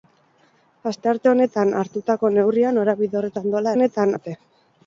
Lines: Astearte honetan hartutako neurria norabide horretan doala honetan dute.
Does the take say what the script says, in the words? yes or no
yes